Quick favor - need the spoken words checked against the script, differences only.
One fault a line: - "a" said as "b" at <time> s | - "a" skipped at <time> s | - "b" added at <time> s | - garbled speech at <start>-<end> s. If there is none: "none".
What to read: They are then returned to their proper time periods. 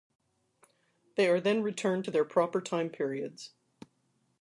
none